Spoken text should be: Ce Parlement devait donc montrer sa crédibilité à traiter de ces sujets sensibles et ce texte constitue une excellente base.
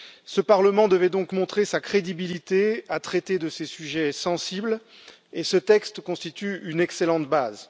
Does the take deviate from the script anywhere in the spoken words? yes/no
no